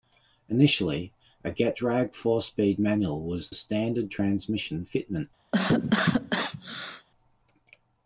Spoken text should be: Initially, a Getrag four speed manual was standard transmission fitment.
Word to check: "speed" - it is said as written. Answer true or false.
true